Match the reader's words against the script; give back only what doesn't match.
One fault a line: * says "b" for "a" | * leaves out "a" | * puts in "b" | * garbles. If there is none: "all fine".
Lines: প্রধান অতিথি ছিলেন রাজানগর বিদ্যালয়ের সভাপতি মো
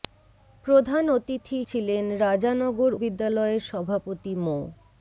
all fine